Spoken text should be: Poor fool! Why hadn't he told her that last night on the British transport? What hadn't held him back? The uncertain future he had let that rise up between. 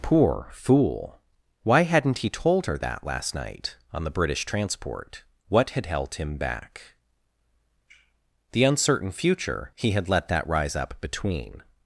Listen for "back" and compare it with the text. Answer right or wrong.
right